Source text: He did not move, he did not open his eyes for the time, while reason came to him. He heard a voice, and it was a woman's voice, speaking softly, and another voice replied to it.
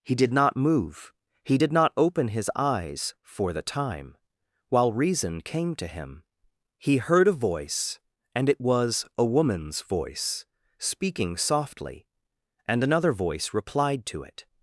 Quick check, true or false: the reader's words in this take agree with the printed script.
true